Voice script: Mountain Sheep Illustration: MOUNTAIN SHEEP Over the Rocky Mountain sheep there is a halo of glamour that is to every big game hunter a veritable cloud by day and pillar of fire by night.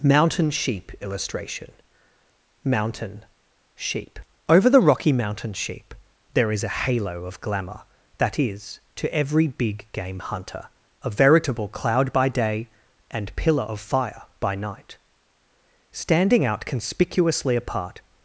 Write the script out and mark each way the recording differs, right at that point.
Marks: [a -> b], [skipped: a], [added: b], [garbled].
Mountain Sheep Illustration: MOUNTAIN SHEEP Over the Rocky Mountain sheep there is a halo of glamour that is to every big game hunter a veritable cloud by day and pillar of fire by night. [added: Standing out conspicuously apart]